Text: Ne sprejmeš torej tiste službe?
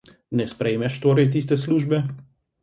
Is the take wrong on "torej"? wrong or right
right